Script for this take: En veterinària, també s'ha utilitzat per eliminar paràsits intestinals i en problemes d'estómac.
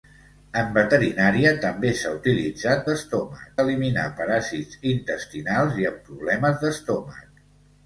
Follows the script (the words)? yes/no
no